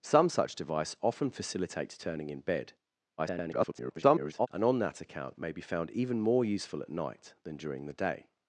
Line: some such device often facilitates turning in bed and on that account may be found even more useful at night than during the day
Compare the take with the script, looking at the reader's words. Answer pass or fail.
fail